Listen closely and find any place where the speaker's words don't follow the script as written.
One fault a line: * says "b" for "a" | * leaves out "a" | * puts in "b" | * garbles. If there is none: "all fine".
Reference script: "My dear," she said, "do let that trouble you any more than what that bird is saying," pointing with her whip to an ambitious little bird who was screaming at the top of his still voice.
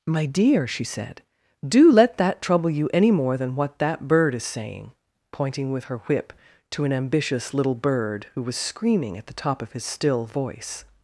all fine